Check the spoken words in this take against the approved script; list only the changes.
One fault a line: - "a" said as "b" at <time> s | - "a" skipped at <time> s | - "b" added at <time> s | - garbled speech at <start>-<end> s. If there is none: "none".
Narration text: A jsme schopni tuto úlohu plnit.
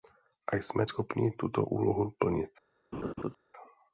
none